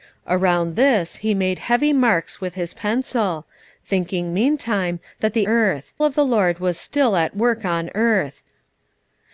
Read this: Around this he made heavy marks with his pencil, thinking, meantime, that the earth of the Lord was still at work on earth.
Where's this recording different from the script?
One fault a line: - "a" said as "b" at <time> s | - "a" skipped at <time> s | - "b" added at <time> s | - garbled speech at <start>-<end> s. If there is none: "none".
none